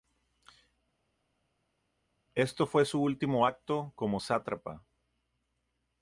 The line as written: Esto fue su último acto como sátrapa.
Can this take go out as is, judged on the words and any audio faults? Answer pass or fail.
pass